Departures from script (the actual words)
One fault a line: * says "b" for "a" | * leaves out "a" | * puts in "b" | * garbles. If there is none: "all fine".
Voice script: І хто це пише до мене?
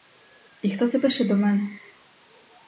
all fine